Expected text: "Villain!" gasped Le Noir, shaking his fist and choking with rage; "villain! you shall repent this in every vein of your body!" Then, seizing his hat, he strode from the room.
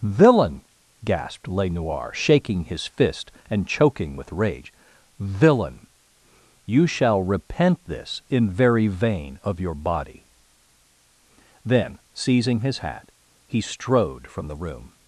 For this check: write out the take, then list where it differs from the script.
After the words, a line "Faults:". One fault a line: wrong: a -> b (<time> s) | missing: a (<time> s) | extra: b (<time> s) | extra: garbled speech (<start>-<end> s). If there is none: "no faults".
"Villain!" gasped Le Noir, shaking his fist and choking with rage; "villain! you shall repent this in very vein of your body!" Then, seizing his hat, he strode from the room.
Faults:
wrong: every -> very (8.5 s)